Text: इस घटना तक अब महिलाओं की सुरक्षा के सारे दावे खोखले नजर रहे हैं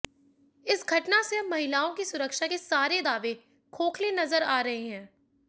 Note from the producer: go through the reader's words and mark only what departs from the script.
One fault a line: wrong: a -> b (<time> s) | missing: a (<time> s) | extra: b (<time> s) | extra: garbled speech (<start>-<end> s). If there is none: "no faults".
wrong: तक -> से (1.2 s)
extra: आ (4.4 s)